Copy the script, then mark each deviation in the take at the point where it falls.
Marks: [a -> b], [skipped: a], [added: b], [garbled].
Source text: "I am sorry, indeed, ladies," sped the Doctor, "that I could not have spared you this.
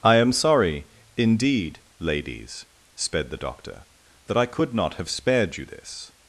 "I am sorry, indeed, ladies," sped the Doctor, "that I could not have spared you this.